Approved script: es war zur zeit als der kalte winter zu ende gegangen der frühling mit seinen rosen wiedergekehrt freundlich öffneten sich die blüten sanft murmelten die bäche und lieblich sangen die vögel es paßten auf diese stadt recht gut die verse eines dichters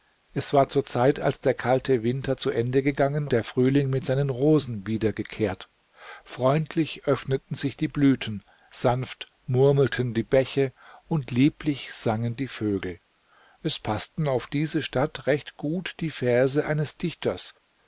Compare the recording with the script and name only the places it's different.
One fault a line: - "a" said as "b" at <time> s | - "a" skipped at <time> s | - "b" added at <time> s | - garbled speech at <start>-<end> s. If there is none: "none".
none